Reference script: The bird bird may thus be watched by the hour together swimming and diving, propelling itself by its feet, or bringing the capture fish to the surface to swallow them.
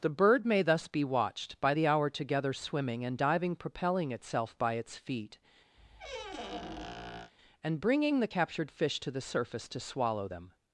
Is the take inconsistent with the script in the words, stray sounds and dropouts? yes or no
yes